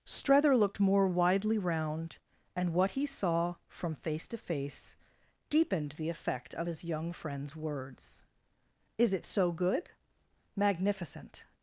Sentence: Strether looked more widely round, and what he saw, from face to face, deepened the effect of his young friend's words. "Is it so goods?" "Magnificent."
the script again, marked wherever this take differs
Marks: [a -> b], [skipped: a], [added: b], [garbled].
Strether looked more widely round, and what he saw, from face to face, deepened the effect of his young friend's words. "Is it so [goods?" -> good] "Magnificent."